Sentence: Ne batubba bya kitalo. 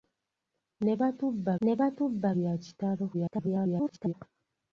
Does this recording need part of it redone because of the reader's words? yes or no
yes